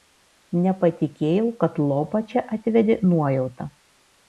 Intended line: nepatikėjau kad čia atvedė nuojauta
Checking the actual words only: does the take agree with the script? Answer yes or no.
no